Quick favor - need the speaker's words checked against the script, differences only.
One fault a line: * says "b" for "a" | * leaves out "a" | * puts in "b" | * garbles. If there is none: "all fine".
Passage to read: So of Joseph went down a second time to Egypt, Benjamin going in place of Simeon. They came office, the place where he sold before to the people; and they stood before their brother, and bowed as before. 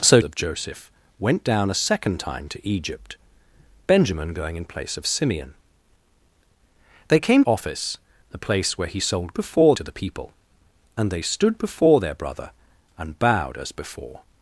all fine